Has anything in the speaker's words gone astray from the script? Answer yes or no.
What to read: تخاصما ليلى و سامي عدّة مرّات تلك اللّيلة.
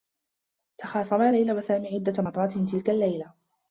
no